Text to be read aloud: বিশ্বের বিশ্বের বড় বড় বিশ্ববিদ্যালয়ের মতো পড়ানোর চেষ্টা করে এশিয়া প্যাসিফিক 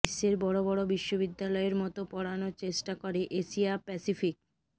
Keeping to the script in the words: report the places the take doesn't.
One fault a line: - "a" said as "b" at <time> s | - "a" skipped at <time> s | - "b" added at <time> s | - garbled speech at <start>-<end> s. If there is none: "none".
- "বিশ্বের" skipped at 0.3 s